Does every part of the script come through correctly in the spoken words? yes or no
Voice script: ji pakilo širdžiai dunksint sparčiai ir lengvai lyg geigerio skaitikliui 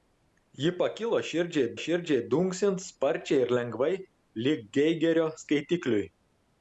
no